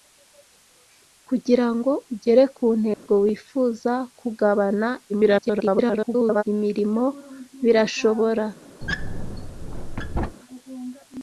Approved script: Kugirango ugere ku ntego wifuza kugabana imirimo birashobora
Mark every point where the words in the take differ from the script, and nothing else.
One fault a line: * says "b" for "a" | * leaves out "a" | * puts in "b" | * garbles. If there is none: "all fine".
* garbles